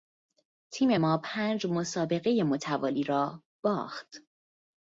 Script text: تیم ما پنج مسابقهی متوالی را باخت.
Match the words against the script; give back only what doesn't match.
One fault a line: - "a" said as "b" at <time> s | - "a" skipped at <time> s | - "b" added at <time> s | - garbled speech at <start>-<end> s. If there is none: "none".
none